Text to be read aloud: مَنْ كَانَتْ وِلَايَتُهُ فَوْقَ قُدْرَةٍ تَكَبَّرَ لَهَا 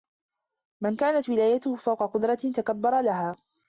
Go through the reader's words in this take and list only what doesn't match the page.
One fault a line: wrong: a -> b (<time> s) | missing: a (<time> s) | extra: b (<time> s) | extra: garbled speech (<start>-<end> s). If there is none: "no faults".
no faults